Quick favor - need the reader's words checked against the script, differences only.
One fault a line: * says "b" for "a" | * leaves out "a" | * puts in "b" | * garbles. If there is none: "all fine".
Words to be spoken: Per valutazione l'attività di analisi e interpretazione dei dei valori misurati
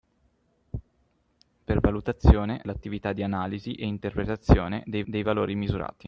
all fine